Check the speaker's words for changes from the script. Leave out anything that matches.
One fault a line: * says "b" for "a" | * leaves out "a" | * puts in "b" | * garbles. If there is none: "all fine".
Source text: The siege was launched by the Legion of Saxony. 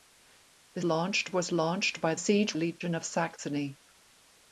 * says "launched" for "siege"
* says "siege" for "the"